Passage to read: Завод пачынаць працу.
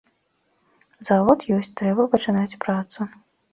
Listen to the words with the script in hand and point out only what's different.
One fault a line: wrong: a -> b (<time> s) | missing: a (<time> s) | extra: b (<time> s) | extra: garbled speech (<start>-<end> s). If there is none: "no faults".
extra: ёсць трэба (1.6 s)